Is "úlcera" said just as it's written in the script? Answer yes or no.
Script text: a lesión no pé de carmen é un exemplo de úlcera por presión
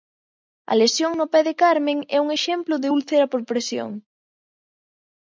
yes